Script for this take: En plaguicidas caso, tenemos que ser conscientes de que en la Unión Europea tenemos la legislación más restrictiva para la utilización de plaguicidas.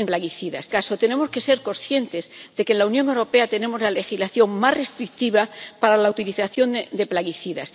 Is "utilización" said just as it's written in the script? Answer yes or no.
yes